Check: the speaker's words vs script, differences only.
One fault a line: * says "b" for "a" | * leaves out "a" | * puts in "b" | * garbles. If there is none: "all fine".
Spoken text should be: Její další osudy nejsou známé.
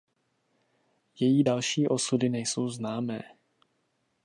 all fine